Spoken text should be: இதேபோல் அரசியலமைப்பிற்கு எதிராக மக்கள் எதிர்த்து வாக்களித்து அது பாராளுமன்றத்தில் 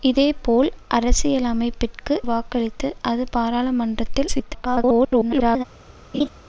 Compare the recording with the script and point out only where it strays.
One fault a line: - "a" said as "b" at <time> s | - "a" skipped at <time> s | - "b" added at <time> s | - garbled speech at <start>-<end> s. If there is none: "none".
- "எதிராக மக்கள் எதிர்த்து" skipped at 2.1 s
- garbled speech at 4.3-5.6 s